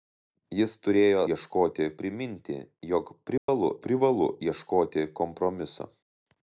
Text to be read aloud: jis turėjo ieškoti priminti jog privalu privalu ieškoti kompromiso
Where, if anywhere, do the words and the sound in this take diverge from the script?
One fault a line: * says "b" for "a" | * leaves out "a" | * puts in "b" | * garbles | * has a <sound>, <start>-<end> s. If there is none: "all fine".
* has a dropout, 3.4-3.5 s